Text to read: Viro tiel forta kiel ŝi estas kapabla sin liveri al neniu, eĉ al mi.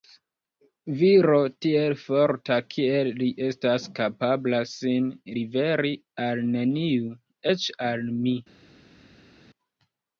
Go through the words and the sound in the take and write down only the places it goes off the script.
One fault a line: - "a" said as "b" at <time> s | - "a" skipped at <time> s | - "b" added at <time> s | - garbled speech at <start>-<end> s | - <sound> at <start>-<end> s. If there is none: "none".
- "ŝi" said as "li" at 3.2 s